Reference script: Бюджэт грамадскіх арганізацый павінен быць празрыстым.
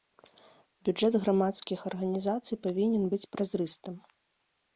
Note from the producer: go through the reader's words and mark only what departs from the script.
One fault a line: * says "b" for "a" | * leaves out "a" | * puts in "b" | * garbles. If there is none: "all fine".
all fine